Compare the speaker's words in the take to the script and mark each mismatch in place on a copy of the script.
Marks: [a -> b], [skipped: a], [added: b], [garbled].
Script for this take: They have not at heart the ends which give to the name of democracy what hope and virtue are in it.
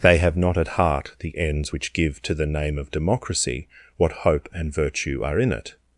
They have not at heart the ends which give to the name of democracy what hope and virtue are in it.